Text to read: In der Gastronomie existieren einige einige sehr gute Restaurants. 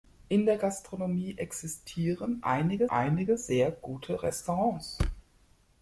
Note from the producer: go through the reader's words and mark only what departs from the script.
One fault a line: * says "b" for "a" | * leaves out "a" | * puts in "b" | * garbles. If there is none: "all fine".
all fine